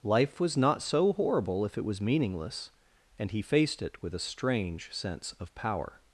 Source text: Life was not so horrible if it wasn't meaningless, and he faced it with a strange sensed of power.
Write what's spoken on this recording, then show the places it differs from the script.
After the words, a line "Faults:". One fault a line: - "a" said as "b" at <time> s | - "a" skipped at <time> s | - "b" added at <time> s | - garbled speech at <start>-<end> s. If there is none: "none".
Life was not so horrible if it was meaningless, and he faced it with a strange sense of power.
Faults:
- "wasn't" said as "was" at 1.9 s
- "sensed" said as "sense" at 4.9 s